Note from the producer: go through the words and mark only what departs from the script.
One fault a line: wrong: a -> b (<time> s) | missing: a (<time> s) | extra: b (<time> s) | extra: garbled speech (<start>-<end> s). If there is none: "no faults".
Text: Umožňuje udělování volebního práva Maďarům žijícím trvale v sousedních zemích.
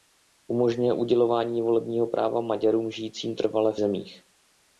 missing: sousedních (3.8 s)